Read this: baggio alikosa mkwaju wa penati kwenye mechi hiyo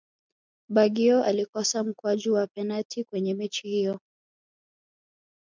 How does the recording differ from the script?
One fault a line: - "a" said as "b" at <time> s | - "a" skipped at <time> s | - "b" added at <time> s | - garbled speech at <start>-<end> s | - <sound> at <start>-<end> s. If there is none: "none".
none